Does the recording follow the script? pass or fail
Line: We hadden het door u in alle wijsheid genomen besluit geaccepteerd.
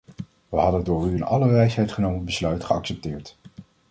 pass